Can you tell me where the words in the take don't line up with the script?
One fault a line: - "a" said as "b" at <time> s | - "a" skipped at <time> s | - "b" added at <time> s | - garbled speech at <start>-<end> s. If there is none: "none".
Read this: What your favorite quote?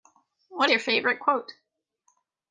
none